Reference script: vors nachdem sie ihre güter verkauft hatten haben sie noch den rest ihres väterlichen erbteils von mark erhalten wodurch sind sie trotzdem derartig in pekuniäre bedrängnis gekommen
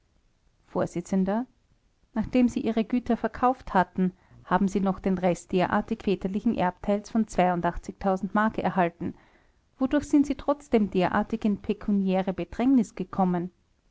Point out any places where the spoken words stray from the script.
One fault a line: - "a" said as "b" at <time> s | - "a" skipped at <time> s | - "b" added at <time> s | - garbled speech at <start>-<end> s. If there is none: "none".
- "ihres" said as "derartig" at 5.5 s